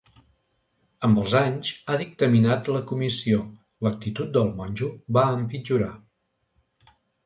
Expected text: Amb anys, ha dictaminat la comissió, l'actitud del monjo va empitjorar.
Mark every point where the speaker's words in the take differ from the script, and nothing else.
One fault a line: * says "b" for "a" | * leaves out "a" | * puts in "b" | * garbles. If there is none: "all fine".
* puts in "els"